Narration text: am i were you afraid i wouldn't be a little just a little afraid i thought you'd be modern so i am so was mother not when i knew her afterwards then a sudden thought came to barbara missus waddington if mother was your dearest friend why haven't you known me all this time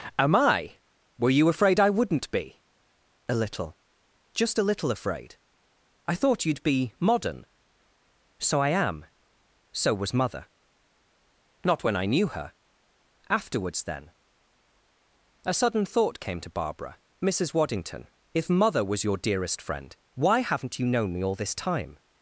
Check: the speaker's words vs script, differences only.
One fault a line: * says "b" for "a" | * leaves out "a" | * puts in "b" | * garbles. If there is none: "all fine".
all fine